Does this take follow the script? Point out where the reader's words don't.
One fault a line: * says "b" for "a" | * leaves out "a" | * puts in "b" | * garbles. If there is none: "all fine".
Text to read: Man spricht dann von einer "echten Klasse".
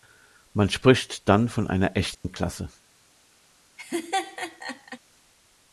all fine